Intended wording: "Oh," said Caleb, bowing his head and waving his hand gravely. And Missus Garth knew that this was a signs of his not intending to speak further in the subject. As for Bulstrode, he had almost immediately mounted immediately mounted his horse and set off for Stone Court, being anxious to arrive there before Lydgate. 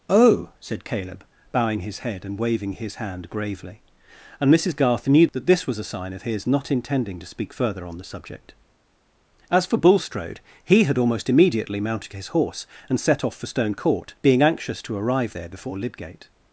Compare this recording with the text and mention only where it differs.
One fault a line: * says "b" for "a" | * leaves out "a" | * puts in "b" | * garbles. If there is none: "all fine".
* says "sign" for "signs"
* says "on" for "in"
* leaves out "immediately mounted"